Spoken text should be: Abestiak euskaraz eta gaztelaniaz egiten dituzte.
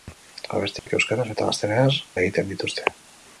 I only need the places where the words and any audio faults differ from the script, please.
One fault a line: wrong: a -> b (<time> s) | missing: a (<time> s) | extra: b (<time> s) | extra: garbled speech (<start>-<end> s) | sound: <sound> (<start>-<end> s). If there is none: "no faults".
sound: dropout (0.8-0.9 s)